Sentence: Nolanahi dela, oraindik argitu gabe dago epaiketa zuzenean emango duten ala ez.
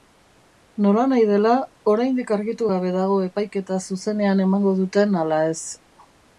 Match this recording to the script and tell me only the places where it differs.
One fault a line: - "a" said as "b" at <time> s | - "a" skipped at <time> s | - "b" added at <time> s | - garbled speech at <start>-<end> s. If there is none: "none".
none